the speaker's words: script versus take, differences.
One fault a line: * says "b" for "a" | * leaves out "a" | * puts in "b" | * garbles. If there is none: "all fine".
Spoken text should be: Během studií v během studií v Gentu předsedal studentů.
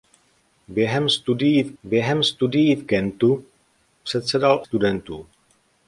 all fine